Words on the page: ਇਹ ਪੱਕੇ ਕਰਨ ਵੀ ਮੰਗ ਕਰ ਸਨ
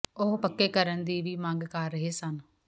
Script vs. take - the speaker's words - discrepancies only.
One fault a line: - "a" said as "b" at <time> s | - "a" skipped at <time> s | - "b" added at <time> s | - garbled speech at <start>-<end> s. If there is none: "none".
- "ਇਹ" said as "ਉਹ" at 0.2 s
- "ਦੀ" added at 1.0 s
- "ਰਹੇ" added at 1.9 s